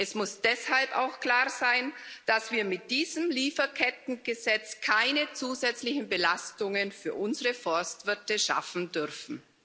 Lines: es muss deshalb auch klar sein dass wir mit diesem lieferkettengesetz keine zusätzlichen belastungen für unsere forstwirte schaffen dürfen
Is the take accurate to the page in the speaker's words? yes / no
yes